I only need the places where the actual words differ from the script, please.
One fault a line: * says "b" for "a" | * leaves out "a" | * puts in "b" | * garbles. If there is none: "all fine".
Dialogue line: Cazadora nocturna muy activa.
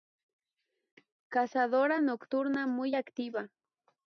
all fine